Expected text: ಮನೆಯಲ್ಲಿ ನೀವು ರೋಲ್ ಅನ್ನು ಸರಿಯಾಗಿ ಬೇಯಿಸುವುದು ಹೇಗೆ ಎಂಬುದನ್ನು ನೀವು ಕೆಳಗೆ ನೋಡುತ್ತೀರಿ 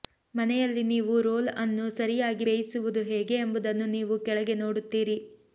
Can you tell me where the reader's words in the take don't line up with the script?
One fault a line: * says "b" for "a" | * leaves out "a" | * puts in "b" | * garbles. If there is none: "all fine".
all fine